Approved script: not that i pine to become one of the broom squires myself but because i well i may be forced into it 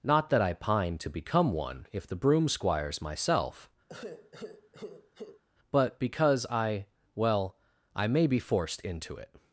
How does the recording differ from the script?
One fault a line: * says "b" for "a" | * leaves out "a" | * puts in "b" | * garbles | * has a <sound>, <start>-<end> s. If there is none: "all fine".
* says "if" for "of"
* has a sigh, 3.9-5.4 s